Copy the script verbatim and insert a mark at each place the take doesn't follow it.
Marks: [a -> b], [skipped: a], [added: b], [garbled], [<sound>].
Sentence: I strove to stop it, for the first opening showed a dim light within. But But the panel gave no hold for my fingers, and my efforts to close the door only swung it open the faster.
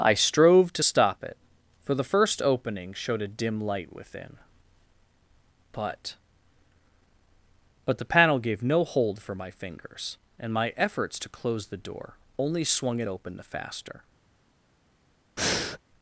I strove to stop it, for the first opening showed a dim light within. But But the panel gave no hold for my fingers, and my efforts to close the door only swung it open the faster. [breath]